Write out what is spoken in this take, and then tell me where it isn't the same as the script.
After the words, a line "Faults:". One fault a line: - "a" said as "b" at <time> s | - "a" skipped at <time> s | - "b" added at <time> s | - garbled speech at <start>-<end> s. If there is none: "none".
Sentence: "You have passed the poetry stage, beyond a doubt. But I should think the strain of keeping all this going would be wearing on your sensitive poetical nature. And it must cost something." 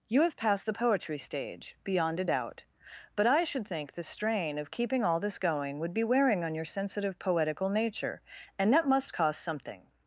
"You have passed the poetry stage, beyond a doubt. But I should think the strain of keeping all this going would be wearing on your sensitive poetical nature. And that must cost something."
Faults:
- "it" said as "that" at 8.7 s